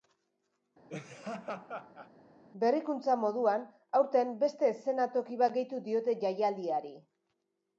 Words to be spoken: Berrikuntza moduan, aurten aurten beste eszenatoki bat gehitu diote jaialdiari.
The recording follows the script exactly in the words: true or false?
false